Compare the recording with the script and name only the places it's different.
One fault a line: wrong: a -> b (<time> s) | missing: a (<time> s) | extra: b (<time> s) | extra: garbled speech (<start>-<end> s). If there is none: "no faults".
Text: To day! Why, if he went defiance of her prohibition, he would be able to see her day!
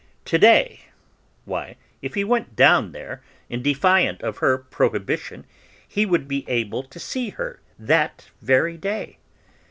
extra: down there in (2.5 s)
extra: that very (7.8 s)